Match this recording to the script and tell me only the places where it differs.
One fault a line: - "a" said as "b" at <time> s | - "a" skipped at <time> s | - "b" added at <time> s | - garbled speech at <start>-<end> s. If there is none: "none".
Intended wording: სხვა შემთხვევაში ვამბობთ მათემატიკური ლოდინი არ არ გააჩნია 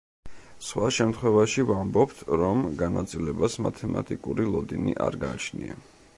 - "რომ განაწილებას" added at 2.4 s
- "არ" skipped at 5.2 s